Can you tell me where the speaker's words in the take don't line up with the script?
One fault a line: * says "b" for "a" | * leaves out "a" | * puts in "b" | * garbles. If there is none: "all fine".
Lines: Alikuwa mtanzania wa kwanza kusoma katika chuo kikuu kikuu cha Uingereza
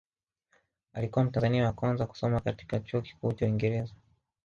* leaves out "kikuu"